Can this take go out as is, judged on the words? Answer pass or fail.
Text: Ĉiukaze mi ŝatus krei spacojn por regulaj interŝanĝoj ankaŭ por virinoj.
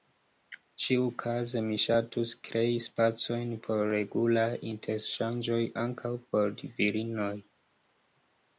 pass